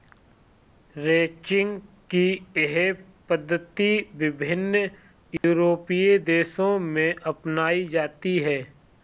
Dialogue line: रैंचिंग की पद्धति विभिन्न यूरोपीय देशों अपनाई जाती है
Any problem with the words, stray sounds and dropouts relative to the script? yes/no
yes